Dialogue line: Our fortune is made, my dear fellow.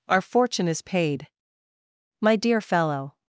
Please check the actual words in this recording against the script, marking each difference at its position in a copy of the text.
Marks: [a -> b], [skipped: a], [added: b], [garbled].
Our fortune is [made, -> paid] my dear fellow.